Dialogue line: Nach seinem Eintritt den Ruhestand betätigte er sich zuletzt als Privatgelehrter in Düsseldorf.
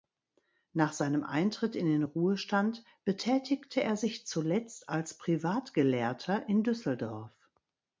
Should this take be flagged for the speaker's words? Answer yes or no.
yes